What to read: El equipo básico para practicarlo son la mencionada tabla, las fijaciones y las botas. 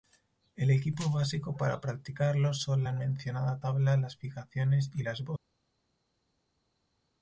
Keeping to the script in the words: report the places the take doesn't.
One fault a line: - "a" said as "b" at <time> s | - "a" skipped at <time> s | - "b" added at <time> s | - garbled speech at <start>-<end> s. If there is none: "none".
none